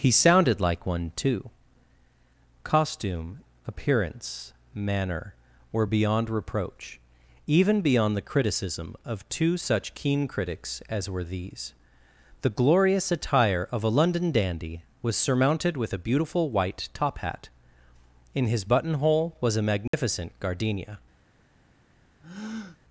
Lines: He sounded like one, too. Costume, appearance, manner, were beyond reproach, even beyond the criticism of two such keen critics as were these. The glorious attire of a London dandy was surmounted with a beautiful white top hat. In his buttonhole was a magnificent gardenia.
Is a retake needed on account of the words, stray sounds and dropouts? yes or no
yes